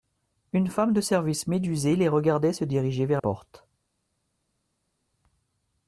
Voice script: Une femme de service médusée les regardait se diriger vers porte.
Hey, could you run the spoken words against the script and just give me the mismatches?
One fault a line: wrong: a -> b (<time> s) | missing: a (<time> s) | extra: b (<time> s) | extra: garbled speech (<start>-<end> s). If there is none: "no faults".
no faults